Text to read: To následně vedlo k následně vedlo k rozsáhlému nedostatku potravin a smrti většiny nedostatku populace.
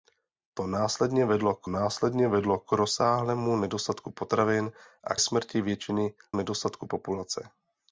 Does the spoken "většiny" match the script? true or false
true